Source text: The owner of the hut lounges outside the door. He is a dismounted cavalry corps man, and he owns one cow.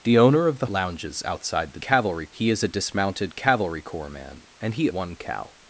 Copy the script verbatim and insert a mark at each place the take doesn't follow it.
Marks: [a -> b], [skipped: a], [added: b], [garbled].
The owner of the [skipped: hut] lounges outside the [door. -> cavalry] He is a dismounted cavalry corps man, and he [skipped: owns] one cow.